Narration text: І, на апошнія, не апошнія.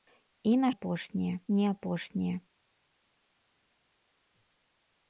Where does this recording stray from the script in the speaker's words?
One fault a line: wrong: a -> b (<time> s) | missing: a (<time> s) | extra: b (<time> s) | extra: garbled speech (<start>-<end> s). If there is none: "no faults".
no faults